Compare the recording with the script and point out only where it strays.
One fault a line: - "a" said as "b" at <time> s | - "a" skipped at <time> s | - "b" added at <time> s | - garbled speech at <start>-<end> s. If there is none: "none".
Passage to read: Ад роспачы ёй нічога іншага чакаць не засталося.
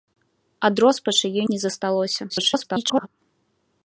- "нічога іншага чакаць" skipped at 1.4 s
- garbled speech at 2.3-3.1 s